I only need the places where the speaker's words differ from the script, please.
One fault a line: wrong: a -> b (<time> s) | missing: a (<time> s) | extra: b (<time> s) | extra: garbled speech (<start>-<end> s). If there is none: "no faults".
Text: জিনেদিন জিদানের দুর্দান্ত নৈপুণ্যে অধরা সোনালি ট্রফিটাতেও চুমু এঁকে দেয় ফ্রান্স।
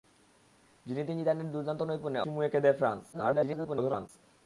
missing: অধরা সোনালি ট্রফিটাতেও (2.2 s)
extra: garbled speech (3.1-4.1 s)